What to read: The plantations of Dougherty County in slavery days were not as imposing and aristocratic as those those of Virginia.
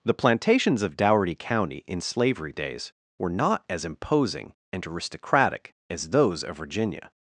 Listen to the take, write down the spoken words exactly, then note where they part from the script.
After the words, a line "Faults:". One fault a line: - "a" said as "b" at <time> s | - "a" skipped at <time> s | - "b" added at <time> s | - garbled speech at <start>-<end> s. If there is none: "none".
The plantations of Dougherty County in slavery days were not as imposing and aristocratic as those of Virginia.
Faults:
- "those" skipped at 6.4 s